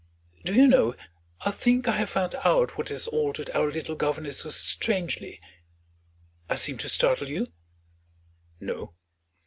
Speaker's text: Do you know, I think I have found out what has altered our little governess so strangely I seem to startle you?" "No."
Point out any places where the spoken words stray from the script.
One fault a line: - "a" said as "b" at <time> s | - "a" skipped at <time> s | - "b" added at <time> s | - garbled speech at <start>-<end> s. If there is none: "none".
none